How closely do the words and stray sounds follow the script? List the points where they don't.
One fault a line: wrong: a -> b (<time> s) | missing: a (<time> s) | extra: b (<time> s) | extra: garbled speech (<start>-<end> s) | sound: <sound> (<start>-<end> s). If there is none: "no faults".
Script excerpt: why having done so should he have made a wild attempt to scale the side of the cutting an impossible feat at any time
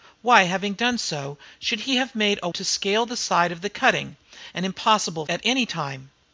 missing: wild attempt (2.5 s)
missing: feat (5.3 s)